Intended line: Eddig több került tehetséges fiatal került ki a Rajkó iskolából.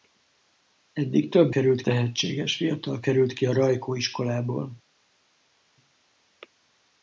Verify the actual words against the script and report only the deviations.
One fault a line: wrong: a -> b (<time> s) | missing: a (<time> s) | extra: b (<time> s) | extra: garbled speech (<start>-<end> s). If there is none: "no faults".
no faults